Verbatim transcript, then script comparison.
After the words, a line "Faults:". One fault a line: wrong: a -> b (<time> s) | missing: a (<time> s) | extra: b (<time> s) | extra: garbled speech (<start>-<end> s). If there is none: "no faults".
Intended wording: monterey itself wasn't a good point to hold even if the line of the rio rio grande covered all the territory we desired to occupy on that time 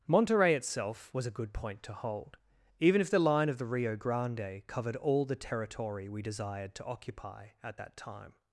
monterey itself was a good point to hold even if the line of the rio grande covered all the territory we desired to occupy at that time
Faults:
wrong: wasn't -> was (1.1 s)
missing: rio (4.0 s)
wrong: on -> at (7.6 s)